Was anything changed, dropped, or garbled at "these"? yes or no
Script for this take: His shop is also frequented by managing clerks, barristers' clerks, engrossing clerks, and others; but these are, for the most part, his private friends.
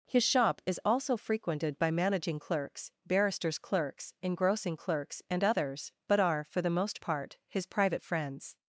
yes